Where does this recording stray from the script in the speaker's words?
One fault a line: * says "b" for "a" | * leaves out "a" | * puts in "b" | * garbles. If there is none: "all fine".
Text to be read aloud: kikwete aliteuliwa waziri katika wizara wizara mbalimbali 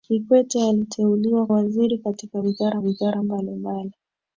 all fine